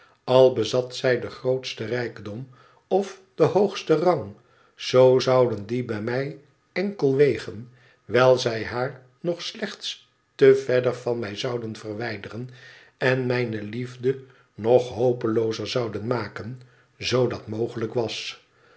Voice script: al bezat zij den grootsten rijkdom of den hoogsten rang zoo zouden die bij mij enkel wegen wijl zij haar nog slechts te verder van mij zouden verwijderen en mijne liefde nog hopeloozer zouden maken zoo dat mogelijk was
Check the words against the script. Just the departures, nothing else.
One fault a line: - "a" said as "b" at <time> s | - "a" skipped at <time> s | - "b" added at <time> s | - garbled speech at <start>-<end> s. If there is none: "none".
none